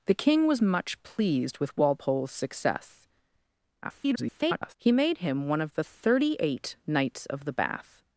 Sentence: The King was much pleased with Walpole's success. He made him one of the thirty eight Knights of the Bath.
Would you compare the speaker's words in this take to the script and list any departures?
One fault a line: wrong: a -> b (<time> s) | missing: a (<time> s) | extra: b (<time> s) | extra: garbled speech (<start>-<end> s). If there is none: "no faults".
extra: garbled speech (3.8-4.8 s)